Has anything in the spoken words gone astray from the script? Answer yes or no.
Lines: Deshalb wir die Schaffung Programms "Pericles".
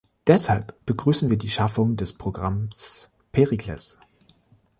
yes